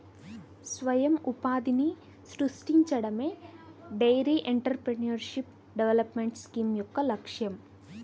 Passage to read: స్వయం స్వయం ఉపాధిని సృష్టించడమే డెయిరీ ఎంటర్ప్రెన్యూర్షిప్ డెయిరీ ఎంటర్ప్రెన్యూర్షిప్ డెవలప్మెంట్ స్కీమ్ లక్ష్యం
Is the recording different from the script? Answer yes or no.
yes